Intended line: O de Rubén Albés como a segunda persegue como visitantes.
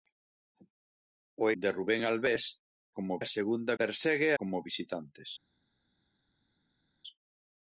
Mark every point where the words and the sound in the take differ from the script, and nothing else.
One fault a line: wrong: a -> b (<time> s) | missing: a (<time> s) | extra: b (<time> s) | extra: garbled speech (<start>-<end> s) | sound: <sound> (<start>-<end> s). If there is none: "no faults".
no faults